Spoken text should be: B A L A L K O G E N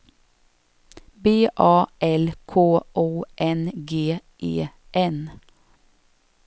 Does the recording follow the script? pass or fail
fail